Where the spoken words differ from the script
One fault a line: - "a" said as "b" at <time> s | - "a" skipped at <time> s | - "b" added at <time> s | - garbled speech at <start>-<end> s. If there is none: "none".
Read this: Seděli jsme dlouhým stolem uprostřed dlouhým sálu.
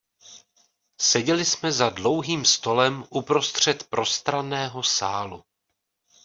- "za" added at 1.7 s
- "dlouhým" said as "prostranného" at 3.9 s